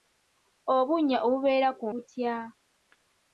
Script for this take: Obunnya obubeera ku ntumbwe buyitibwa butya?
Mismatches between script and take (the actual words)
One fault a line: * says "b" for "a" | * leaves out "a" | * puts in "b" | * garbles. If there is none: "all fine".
* leaves out "ntumbwe buyitibwa"